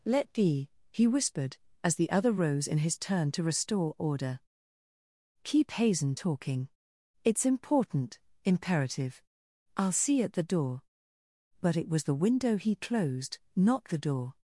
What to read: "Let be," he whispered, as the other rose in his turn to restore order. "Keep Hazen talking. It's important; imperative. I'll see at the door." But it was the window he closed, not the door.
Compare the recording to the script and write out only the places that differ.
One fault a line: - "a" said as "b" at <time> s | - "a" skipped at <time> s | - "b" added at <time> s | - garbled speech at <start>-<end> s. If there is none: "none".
none